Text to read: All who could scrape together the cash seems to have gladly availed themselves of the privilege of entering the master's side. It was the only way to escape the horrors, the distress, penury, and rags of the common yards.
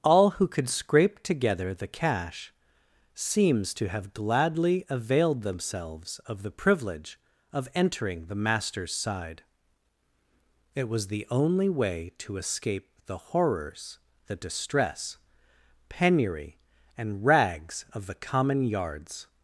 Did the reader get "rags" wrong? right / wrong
right